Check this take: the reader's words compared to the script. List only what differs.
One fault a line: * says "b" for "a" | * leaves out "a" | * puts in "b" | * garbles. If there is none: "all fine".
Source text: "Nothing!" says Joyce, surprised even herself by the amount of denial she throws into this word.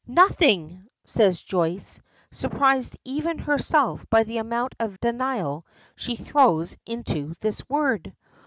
all fine